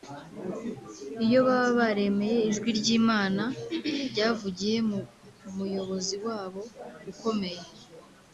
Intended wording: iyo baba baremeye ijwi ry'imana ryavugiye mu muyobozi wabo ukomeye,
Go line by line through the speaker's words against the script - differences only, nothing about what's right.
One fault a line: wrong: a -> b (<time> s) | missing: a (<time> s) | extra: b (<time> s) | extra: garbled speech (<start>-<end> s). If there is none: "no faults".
no faults